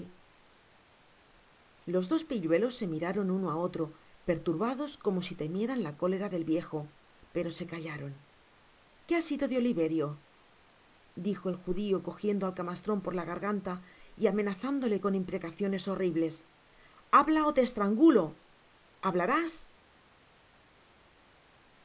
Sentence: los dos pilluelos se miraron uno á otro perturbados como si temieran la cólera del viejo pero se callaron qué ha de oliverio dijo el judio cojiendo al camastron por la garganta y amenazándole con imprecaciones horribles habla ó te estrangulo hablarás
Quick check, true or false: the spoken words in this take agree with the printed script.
false